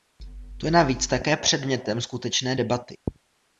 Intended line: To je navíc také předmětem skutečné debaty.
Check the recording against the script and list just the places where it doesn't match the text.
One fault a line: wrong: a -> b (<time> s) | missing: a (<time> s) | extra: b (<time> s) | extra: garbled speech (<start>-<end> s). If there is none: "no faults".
no faults